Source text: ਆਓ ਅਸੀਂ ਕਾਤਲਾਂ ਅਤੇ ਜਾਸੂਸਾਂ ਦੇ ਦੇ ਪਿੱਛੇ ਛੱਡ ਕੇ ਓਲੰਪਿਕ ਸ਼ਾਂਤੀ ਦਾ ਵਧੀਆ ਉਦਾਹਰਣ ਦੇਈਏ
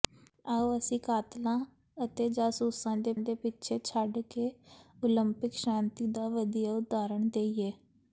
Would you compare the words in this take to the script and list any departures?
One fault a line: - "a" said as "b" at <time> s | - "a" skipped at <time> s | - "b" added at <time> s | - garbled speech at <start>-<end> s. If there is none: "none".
none